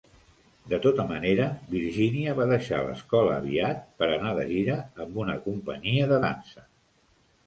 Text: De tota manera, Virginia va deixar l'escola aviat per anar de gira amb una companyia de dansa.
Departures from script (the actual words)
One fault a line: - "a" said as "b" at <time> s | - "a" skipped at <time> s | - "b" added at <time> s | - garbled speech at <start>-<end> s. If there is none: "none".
none